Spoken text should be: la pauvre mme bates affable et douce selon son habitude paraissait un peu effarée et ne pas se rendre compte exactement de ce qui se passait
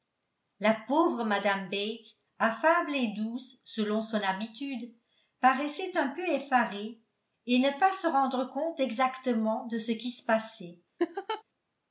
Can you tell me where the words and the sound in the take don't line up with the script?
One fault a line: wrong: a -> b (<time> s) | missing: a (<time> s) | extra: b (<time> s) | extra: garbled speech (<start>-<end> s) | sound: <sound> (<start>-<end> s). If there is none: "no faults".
sound: laugh (11.0-11.4 s)